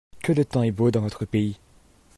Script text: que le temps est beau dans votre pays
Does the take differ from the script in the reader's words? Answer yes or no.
no